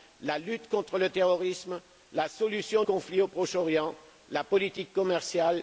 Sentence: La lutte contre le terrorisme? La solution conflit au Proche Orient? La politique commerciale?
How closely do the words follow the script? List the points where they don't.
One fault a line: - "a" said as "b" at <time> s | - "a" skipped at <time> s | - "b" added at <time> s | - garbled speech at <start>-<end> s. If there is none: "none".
none